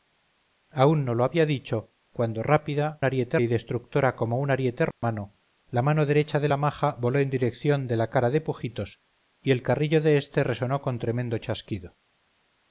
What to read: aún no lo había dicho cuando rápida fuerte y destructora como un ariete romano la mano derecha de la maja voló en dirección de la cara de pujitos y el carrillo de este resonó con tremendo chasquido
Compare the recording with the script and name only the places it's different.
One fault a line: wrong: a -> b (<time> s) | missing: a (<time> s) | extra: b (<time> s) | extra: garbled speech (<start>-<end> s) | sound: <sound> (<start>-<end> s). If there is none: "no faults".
wrong: fuerte -> ariete (3.0 s)
sound: dropout (4.9-5.0 s)